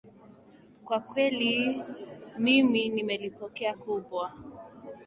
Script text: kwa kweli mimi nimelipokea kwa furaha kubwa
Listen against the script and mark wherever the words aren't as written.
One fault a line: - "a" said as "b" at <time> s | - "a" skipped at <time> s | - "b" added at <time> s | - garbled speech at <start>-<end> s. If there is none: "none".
- "kwa furaha" skipped at 3.7 s